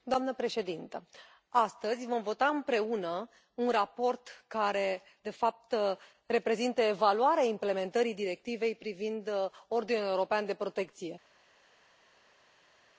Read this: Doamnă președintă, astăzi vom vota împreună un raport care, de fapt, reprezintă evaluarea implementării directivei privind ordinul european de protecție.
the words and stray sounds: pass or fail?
pass